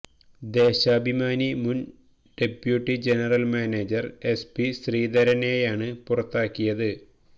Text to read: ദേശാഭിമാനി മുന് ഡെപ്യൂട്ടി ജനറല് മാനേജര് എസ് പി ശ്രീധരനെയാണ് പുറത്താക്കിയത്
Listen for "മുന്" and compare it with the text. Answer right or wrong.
right